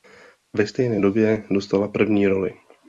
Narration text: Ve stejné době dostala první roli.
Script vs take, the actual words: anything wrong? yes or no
no